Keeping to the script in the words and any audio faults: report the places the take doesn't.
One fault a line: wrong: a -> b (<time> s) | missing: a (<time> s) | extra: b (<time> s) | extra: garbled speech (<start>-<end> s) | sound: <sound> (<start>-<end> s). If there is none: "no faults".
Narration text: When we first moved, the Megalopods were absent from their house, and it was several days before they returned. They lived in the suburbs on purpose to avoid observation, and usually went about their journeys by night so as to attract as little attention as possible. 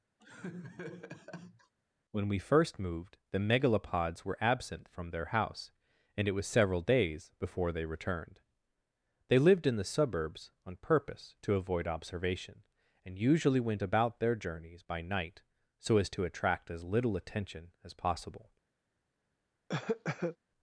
sound: laugh (0.2-1.7 s)
sound: cough (19.7-20.4 s)